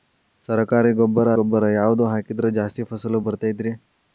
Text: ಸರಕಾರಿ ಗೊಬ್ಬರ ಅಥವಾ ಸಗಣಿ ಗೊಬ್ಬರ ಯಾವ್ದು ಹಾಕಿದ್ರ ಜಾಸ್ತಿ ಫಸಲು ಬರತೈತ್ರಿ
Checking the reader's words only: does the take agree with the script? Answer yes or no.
no